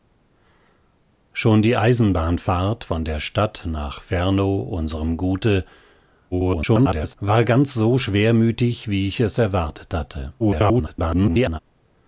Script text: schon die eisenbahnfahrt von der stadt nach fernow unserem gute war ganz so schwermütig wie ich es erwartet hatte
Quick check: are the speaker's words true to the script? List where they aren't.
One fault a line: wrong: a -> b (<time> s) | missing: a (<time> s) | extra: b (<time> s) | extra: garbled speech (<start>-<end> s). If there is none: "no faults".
extra: garbled speech (6.3-7.1 s)
extra: garbled speech (10.4-11.6 s)